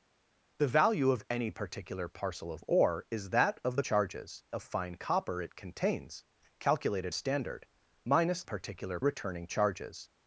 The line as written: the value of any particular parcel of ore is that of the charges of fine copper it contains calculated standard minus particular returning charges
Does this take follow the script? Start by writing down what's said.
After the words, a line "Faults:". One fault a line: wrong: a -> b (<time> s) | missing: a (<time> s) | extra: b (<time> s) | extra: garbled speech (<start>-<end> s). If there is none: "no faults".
the value of any particular parcel of ore is that of the charges of fine copper it contains calculated standard minus particular returning charges
Faults:
no faults